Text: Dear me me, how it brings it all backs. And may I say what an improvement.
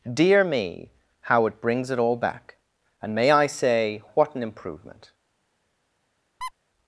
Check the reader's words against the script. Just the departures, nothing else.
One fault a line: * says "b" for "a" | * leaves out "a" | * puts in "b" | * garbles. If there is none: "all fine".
* leaves out "me"
* says "back" for "backs"